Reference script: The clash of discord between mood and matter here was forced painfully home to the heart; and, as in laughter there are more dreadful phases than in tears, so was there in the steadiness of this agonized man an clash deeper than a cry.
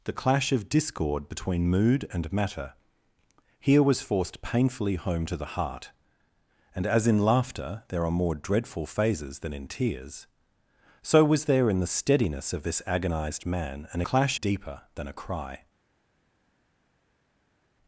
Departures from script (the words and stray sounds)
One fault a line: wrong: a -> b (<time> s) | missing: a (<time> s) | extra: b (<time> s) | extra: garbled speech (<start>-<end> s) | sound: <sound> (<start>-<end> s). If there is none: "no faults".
no faults